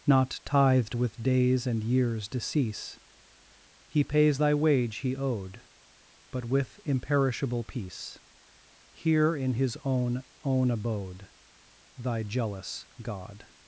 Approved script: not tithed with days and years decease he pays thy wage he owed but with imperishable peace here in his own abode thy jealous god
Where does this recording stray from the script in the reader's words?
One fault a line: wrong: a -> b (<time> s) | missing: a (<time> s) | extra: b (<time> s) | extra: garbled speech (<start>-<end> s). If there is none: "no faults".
extra: own (10.4 s)